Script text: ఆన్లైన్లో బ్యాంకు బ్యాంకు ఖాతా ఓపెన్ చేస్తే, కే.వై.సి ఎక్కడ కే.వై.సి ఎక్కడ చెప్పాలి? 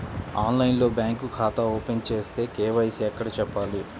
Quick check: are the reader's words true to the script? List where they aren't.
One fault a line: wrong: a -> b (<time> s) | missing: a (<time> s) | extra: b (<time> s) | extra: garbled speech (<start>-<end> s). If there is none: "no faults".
missing: బ్యాంకు (1.3 s)
missing: కే.వై.సి ఎక్కడ (3.3 s)